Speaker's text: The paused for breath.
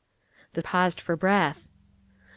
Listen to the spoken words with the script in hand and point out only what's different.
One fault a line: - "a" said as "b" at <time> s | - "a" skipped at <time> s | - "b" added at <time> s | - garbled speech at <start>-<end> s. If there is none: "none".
none